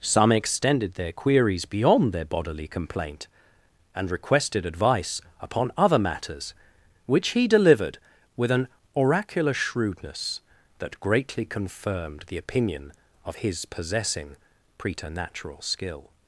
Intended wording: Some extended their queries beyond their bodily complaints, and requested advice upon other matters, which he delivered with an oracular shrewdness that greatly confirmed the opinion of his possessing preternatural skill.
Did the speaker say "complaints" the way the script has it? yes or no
no